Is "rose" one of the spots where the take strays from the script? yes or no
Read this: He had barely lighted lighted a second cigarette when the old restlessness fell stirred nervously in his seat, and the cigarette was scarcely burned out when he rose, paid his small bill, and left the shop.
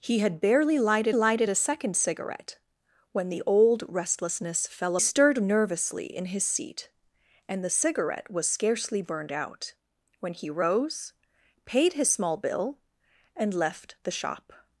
no